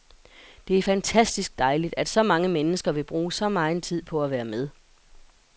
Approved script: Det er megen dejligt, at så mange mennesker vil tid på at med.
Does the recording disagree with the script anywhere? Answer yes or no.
yes